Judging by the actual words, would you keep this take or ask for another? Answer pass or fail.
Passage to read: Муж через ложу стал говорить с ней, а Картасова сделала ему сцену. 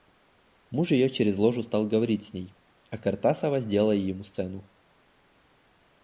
fail